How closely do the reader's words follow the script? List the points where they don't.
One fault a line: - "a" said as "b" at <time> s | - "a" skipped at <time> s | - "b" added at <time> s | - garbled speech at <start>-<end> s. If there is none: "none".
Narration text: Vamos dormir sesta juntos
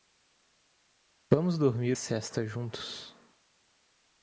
none